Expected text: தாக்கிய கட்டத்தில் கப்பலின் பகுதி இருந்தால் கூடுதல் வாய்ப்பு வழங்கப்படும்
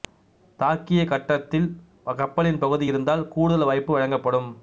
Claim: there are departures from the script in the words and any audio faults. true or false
false